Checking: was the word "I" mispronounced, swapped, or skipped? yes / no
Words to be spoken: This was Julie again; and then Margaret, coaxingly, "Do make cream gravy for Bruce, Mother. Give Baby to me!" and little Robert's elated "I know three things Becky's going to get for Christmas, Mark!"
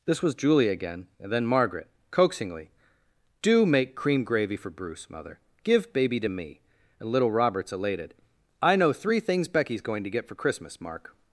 no